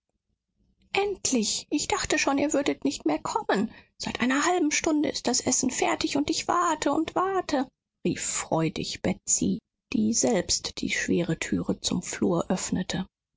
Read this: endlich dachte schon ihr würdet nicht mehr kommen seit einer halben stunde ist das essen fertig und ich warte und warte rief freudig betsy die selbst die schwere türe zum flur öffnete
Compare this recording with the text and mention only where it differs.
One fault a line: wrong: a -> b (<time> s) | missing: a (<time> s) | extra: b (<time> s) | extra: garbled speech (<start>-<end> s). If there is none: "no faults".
extra: ich (1.7 s)